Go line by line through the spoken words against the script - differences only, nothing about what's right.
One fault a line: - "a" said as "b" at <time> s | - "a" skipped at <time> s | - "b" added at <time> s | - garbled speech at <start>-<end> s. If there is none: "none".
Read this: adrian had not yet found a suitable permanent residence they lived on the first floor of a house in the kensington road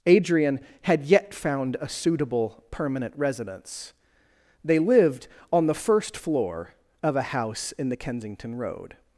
- "not" skipped at 1.1 s